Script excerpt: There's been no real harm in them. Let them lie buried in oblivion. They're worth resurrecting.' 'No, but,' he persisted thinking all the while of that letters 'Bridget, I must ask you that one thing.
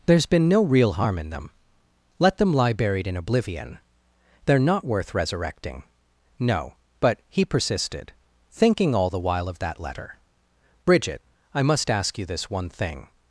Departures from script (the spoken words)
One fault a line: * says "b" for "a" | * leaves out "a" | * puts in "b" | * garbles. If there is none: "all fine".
* puts in "not"
* says "letter" for "letters"
* says "this" for "that"